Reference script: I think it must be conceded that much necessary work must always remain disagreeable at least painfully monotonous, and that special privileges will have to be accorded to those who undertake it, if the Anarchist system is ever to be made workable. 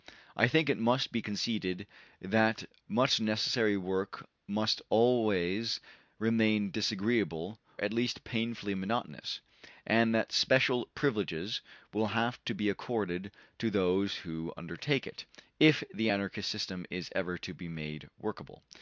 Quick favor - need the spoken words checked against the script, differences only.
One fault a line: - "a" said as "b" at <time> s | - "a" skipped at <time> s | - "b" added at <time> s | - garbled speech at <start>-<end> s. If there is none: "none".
none